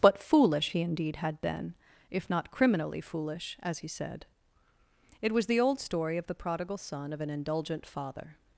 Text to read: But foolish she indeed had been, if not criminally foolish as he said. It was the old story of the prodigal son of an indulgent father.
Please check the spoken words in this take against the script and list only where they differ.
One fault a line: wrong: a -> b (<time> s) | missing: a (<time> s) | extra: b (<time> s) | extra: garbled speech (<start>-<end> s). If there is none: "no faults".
wrong: she -> he (0.7 s)